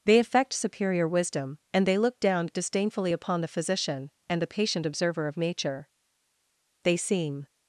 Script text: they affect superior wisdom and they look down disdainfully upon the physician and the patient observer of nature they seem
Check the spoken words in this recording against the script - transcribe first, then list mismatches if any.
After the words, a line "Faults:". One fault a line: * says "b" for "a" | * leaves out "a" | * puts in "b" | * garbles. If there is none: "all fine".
they affect superior wisdom and they look down disdainfully upon the physician and the patient observer of nature they seem
Faults:
all fine